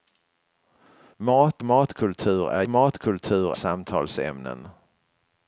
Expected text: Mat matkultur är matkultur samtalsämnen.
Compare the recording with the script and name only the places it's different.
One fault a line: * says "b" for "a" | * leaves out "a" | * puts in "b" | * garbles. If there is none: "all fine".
all fine